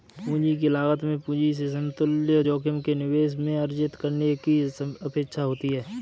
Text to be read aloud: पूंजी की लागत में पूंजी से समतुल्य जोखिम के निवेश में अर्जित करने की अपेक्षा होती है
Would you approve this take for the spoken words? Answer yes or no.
yes